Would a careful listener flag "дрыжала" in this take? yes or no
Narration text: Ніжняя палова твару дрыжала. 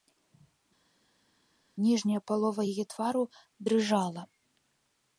no